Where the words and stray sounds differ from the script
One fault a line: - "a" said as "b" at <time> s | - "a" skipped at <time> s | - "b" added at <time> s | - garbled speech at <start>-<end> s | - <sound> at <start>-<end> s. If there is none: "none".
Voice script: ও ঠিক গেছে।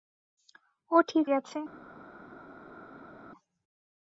none